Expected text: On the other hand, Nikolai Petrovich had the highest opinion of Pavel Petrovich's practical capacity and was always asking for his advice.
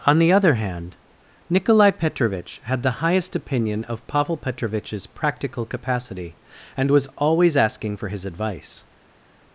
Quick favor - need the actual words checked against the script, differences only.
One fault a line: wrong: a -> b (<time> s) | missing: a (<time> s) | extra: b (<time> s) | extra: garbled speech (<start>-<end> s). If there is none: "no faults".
no faults